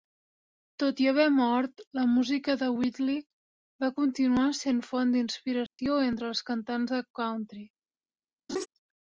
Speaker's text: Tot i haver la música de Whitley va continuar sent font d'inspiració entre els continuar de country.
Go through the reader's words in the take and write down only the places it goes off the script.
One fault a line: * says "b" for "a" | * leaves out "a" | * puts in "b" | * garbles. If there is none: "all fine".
* puts in "mort"
* says "cantants" for "continuar"